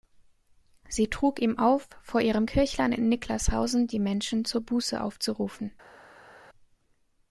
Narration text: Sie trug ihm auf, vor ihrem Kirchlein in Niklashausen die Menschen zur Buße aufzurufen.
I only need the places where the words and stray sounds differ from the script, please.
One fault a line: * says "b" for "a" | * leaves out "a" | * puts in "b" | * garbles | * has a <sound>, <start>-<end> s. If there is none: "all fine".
all fine